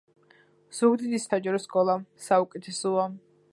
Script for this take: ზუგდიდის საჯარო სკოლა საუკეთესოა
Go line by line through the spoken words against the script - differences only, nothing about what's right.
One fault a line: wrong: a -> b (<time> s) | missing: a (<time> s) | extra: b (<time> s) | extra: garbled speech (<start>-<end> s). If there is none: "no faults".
no faults